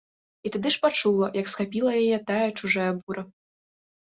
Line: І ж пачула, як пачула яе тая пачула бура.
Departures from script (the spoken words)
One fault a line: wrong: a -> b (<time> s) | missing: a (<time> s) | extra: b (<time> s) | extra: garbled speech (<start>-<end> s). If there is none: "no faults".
extra: тады (0.5 s)
wrong: пачула -> схапіла (1.5 s)
wrong: пачула -> чужая (2.6 s)